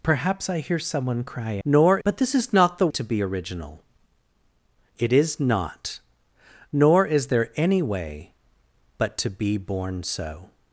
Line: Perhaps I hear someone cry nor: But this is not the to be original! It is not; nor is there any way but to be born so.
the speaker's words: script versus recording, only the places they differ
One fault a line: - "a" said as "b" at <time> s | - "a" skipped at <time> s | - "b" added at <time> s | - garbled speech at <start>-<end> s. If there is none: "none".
none